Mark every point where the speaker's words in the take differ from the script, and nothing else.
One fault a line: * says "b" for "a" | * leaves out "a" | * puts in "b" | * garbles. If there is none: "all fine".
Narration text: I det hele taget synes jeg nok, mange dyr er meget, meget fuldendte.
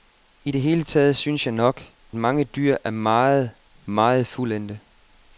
all fine